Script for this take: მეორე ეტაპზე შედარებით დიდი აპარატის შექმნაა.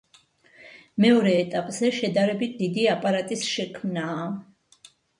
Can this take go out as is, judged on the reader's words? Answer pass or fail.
pass